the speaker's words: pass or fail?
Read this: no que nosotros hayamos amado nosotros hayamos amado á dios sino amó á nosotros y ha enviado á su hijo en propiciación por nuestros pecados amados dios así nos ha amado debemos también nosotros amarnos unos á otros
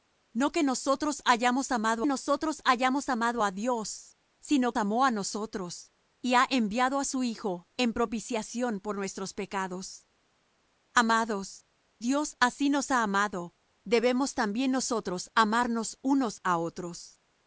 pass